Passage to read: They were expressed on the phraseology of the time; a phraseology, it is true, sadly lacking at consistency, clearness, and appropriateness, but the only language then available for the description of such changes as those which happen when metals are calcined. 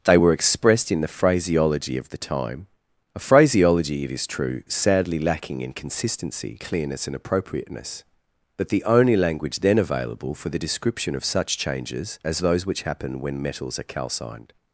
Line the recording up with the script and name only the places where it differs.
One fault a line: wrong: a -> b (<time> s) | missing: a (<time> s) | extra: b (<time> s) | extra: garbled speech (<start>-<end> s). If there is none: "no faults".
wrong: on -> in (0.9 s)
wrong: at -> in (5.6 s)